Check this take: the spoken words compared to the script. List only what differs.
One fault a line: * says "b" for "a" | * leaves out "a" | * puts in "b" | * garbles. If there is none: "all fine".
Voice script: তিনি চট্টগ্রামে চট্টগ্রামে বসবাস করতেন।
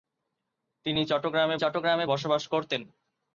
all fine